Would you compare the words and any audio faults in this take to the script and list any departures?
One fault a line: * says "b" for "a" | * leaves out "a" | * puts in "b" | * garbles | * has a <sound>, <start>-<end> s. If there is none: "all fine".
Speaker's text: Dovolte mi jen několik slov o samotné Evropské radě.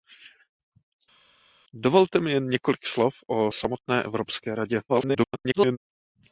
* garbles